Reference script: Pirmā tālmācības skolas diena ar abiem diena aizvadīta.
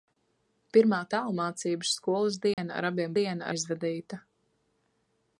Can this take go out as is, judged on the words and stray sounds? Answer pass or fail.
fail